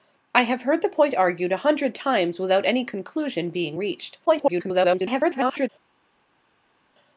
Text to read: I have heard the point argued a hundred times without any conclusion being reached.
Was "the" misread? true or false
false